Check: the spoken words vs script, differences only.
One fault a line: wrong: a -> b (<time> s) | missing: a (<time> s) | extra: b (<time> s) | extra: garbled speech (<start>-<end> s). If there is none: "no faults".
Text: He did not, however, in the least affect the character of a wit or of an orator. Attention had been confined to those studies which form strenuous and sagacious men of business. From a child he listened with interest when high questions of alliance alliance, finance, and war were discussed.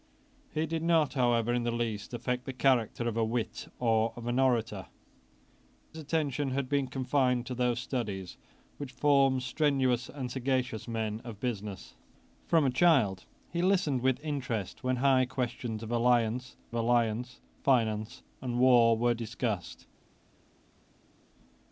no faults